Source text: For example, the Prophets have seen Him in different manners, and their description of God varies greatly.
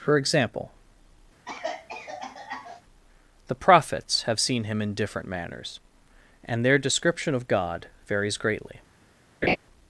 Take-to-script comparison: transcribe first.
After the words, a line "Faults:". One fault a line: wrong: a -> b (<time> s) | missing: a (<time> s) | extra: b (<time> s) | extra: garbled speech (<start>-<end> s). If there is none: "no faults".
For example, the Prophets have seen Him in different manners, and their description of God varies greatly.
Faults:
no faults